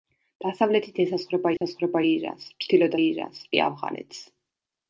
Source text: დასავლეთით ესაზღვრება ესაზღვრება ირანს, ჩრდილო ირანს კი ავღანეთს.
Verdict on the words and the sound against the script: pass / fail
fail